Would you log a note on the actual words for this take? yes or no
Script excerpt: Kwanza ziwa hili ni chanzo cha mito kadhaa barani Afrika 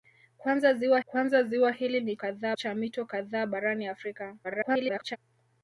yes